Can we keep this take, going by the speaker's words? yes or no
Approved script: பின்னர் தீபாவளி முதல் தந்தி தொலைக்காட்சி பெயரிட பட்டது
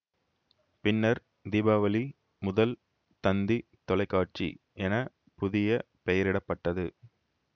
no